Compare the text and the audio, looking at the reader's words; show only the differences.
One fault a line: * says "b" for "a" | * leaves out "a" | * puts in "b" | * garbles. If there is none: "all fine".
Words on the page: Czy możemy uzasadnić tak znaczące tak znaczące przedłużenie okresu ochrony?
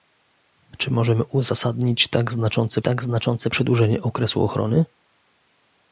all fine